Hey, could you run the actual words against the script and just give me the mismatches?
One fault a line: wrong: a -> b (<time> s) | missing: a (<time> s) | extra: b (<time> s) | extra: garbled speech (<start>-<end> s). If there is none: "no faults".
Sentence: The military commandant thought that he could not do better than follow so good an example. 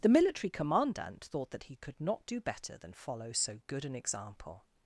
no faults